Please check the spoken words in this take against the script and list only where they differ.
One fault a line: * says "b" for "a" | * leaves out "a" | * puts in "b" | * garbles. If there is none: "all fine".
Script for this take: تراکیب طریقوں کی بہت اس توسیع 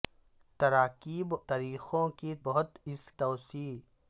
all fine